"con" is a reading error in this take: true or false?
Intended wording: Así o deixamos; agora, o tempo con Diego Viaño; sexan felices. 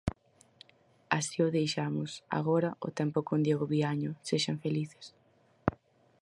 false